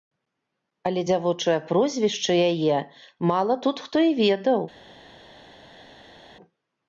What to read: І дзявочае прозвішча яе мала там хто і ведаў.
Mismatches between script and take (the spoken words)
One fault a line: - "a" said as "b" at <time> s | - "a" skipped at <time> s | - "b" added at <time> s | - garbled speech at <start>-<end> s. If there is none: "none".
- "І" said as "Але" at 0.9 s
- "там" said as "тут" at 3.6 s